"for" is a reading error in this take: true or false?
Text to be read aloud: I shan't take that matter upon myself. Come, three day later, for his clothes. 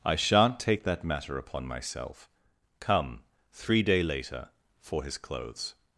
false